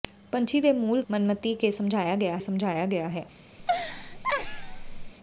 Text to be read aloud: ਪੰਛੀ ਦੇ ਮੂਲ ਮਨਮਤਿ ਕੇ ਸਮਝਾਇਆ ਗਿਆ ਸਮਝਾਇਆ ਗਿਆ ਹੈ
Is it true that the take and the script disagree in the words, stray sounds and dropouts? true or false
true